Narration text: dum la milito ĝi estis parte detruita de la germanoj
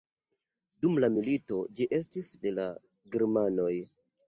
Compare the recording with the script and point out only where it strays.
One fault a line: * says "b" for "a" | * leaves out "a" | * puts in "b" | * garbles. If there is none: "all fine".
* leaves out "parte detruita"